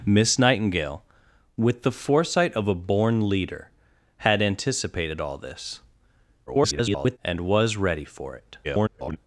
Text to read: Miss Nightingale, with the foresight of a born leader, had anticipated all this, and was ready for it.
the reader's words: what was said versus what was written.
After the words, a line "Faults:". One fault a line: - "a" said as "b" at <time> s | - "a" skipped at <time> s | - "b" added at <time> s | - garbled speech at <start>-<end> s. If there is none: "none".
Miss Nightingale, with the foresight of a born leader, had anticipated all this, [garbled] and was ready for it. [garbled]
Faults:
- garbled speech at 6.5-7.2 s
- garbled speech at 8.6-9.2 s